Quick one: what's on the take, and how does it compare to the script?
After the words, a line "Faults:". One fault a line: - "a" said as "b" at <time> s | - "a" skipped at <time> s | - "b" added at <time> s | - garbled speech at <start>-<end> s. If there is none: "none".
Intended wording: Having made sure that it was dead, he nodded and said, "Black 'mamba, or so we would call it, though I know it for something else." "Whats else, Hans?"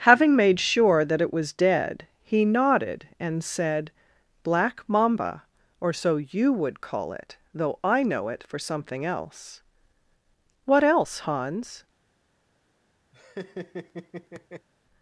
Having made sure that it was dead, he nodded and said, "Black 'mamba, or so you would call it, though I know it for something else." "What else, Hans?"
Faults:
- "we" said as "you" at 6.2 s
- "Whats" said as "What" at 10.7 s